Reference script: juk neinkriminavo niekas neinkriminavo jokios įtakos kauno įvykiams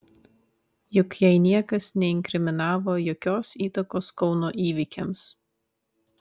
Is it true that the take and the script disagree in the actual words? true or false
true